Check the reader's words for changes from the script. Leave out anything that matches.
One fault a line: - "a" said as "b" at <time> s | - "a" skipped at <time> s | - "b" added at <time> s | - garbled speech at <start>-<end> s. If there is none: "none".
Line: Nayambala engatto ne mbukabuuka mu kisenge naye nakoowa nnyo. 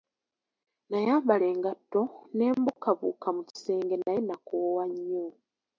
none